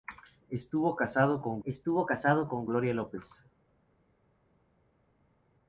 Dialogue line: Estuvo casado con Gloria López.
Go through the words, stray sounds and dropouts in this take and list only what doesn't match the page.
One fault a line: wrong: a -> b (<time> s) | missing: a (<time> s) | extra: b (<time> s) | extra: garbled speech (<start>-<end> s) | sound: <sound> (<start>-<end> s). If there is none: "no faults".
extra: estuvo casado con (1.6 s)